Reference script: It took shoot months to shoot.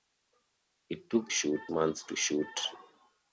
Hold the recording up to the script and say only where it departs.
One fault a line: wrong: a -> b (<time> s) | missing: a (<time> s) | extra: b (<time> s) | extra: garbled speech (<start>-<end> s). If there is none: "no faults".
no faults